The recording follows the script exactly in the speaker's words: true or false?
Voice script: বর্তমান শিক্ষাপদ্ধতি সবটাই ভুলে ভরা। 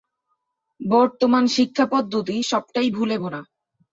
true